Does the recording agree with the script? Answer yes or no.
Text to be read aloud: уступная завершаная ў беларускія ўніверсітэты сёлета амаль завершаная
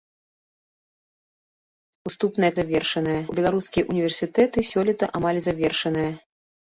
yes